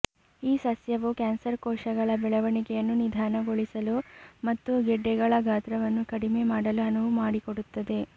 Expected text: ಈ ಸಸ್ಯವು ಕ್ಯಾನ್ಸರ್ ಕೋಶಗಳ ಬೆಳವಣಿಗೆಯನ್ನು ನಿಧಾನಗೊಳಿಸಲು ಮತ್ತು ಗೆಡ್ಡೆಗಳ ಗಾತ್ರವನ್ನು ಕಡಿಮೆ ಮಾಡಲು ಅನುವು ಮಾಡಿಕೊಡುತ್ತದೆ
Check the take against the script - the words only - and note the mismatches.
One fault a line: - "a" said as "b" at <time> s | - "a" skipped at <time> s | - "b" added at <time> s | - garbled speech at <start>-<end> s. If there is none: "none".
none